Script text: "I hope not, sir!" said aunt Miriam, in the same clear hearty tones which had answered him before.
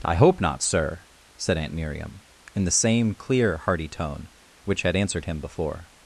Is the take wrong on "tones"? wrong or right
wrong